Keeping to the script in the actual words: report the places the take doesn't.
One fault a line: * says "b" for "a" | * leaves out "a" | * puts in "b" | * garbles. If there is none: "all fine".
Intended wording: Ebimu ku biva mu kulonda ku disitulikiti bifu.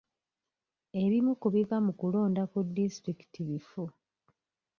all fine